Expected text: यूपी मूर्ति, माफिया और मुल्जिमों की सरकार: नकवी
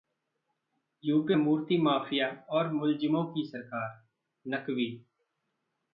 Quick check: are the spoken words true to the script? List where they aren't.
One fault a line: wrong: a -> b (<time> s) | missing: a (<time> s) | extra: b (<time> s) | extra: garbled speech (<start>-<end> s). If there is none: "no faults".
no faults